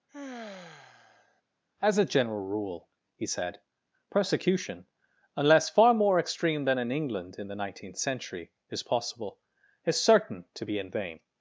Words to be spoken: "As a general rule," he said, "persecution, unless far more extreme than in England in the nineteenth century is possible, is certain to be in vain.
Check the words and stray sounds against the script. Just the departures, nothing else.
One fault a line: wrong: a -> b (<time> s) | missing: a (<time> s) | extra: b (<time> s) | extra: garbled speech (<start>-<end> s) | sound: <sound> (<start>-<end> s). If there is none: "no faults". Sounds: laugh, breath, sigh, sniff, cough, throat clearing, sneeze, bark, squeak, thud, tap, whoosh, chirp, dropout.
sound: sigh (0.1-1.4 s)